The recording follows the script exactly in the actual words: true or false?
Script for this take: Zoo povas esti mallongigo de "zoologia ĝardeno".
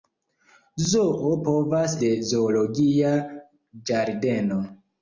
false